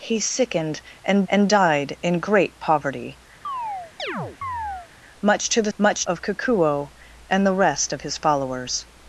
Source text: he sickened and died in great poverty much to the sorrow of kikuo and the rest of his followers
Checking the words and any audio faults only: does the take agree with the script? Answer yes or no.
no